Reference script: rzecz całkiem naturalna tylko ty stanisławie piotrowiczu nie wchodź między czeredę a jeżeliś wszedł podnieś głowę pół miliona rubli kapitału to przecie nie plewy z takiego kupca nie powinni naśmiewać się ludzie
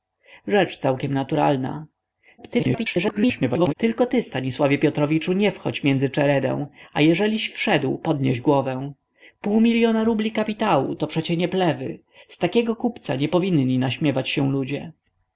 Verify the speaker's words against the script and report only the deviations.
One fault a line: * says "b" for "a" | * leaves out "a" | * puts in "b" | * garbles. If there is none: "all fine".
* garbles